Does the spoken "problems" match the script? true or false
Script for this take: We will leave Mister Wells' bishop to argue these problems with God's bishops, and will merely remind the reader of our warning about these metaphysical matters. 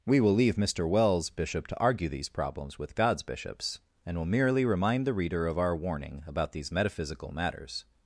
true